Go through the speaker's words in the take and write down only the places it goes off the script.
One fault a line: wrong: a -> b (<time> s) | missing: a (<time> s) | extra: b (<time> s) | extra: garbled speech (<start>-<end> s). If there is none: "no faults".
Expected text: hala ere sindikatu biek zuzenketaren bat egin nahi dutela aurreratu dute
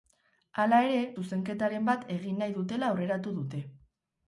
missing: sindikatu biek (1.0 s)